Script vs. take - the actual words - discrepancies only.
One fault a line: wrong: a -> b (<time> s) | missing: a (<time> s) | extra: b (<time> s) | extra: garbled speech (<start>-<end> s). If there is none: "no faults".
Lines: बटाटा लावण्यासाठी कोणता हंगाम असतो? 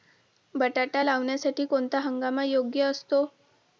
extra: योग्य (2.4 s)